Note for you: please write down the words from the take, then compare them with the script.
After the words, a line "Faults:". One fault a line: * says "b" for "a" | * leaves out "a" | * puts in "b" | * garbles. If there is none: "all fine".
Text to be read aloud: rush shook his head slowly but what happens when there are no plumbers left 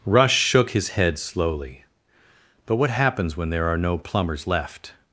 rush shook his head slowly but what happens when there are no plumbers left
Faults:
all fine